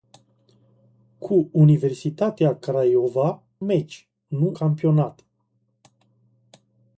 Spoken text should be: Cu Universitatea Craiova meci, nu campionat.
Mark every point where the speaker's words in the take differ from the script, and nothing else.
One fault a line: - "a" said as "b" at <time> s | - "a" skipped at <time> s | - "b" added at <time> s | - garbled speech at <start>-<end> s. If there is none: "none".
none